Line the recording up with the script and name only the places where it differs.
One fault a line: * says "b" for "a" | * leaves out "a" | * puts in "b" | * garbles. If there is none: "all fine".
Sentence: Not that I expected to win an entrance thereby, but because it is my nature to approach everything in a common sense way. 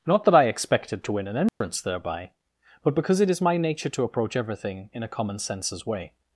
* says "senses" for "sense"